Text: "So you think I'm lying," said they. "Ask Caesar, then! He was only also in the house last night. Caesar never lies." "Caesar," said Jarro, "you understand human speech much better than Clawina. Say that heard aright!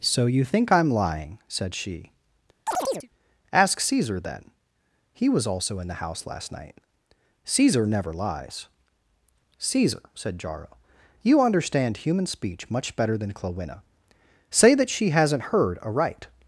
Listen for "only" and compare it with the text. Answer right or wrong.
wrong